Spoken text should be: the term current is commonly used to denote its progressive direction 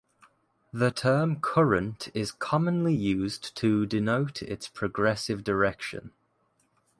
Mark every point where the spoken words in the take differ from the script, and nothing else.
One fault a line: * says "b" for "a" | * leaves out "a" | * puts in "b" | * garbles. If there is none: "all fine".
all fine